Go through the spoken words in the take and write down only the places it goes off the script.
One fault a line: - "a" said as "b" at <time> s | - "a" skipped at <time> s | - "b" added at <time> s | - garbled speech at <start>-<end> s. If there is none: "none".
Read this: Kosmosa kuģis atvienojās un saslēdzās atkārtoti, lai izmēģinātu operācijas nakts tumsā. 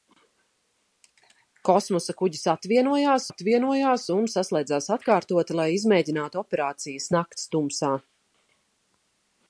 - "atvienojās" added at 3.3 s